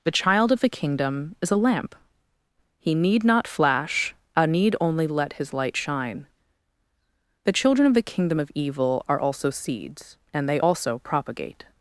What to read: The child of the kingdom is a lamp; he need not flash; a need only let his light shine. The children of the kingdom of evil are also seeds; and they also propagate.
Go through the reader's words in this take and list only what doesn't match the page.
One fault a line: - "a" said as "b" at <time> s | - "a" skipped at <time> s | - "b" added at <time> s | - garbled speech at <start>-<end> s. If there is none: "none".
none